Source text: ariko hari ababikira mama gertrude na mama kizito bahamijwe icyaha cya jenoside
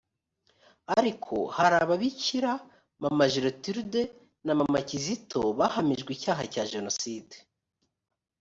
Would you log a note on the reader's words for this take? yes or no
no